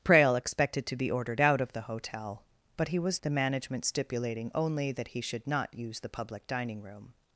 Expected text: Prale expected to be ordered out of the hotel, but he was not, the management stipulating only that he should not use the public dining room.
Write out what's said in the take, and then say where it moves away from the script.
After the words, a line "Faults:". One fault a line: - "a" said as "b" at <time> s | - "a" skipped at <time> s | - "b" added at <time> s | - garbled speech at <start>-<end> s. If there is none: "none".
Prale expected to be ordered out of the hotel, but he was the management stipulating only that he should not use the public dining room.
Faults:
- "not" skipped at 3.2 s